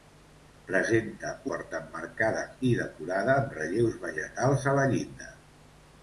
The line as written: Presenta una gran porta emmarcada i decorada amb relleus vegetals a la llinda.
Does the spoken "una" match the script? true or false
false